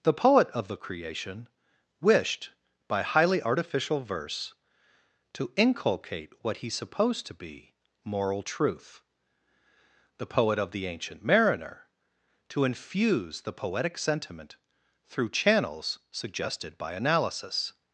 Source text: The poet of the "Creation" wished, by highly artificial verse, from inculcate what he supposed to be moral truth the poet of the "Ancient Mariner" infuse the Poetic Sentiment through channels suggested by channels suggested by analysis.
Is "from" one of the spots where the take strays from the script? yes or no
yes